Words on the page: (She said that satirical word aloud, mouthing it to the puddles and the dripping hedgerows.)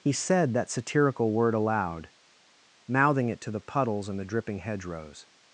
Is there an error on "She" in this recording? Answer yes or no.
yes